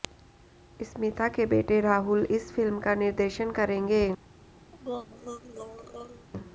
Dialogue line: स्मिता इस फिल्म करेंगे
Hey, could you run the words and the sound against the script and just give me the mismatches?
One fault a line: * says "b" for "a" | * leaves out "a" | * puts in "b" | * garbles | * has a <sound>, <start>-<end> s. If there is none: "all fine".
* puts in "के बेटे राहुल"
* puts in "का निर्देशन"
* has a throat clearing, 4.7-6.3 s